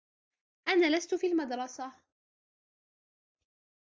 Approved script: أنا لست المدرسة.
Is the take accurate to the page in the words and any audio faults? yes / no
no